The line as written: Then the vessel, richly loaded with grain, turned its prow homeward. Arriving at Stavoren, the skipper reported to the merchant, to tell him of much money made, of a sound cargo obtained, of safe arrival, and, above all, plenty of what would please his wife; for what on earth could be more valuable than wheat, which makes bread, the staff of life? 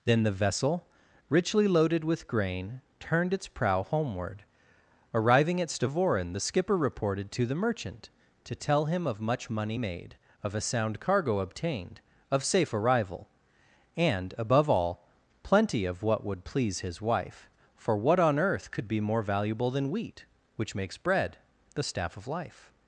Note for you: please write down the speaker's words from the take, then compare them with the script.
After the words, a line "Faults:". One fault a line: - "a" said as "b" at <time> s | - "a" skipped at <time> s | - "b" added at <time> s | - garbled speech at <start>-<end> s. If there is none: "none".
Then the vessel, richly loaded with grain, turned its prow homeward. Arriving at Stavoren, the skipper reported to the merchant, to tell him of much money made, of a sound cargo obtained, of safe arrival, and, above all, plenty of what would please his wife; for what on earth could be more valuable than wheat, which makes bread, the staff of life?
Faults:
none